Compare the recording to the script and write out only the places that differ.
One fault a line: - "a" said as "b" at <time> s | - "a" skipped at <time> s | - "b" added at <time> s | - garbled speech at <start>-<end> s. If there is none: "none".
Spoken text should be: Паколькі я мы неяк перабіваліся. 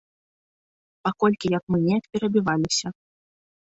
none